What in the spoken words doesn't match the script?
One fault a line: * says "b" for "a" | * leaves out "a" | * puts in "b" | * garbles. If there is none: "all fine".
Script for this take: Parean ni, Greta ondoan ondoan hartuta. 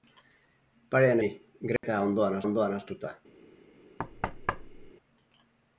all fine